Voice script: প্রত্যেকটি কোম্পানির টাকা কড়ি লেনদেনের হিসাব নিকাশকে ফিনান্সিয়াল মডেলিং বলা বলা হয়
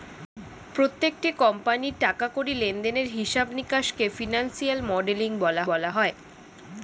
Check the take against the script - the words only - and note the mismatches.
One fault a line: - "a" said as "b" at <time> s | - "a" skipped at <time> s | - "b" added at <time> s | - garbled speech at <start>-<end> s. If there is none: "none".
none